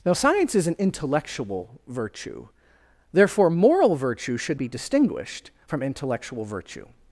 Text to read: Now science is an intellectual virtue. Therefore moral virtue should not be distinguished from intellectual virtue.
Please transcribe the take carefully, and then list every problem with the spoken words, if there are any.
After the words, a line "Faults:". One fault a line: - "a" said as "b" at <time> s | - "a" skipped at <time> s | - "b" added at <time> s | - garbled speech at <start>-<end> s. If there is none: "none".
Now science is an intellectual virtue. Therefore moral virtue should be distinguished from intellectual virtue.
Faults:
- "not" skipped at 4.6 s